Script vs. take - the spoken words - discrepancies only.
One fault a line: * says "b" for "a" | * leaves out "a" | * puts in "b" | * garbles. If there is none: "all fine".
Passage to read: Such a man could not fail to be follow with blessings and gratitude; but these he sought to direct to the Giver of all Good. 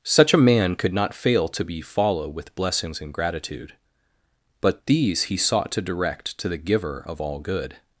all fine